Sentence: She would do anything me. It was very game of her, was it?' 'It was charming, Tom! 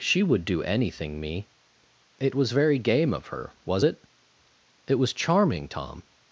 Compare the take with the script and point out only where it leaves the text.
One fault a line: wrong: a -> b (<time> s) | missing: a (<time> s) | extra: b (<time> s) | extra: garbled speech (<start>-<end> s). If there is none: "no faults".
no faults